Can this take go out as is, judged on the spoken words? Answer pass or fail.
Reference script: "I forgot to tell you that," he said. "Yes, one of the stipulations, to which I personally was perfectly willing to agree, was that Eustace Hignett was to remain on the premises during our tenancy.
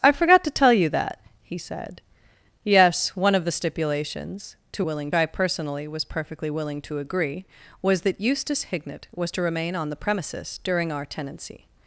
fail